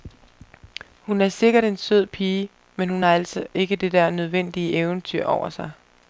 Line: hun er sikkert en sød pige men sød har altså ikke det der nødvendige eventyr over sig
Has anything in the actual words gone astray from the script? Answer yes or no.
yes